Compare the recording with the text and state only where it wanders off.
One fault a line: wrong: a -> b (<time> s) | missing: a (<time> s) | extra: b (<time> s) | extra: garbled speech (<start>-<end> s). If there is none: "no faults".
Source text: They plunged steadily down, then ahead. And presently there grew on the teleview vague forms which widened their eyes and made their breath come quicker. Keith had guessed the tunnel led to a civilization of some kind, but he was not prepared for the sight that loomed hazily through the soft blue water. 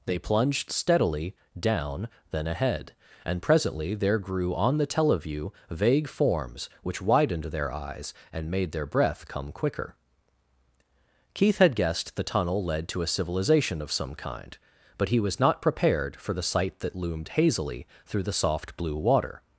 no faults